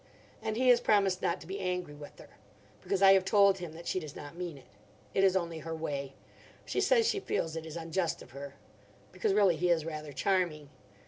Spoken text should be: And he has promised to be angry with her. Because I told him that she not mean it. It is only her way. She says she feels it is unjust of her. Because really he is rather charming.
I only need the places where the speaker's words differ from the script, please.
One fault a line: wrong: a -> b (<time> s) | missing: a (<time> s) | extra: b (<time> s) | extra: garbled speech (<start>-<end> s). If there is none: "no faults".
extra: not (1.2 s)
extra: have (3.1 s)
extra: does (4.0 s)